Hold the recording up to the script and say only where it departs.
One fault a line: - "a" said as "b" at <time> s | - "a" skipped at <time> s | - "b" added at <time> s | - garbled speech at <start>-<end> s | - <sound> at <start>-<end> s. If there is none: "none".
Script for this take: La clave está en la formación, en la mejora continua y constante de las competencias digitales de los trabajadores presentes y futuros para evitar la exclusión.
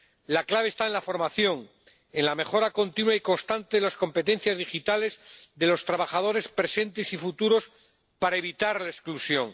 none